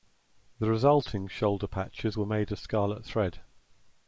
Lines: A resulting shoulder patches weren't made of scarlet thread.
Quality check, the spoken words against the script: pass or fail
fail